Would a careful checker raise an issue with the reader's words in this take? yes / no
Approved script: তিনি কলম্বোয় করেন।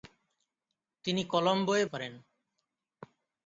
no